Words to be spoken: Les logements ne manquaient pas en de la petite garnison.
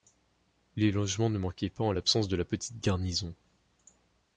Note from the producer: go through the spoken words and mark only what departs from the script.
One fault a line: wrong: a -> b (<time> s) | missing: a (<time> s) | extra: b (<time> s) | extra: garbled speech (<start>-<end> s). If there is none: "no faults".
extra: l'absence (1.9 s)